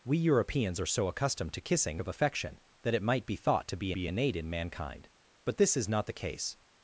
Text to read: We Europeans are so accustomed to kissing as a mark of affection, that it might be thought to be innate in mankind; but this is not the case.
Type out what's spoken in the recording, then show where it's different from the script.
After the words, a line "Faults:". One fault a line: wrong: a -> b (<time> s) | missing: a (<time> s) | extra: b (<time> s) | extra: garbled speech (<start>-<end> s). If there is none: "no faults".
We Europeans are so accustomed to kissing of affection, that it might be thought to be be innate in mankind; but this is not the case.
Faults:
missing: as a mark (2.0 s)
extra: be (3.9 s)